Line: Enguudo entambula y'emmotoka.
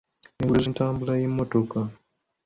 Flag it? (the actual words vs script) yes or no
no